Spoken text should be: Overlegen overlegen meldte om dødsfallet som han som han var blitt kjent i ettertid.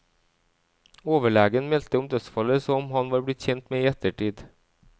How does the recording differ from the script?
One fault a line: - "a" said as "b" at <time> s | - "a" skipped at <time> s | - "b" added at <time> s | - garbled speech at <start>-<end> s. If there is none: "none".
- "overlegen" skipped at 1.7 s
- "som han" skipped at 3.1 s
- "med" added at 3.8 s